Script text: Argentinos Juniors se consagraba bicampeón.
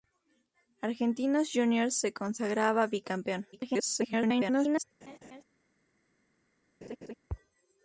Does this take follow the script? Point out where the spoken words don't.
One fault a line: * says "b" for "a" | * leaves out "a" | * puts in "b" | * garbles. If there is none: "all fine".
* garbles